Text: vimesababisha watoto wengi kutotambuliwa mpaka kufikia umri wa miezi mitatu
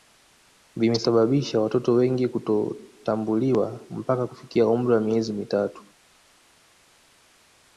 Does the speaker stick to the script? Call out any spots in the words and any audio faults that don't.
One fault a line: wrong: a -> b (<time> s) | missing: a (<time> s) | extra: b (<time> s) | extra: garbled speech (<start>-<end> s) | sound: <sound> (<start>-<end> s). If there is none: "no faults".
no faults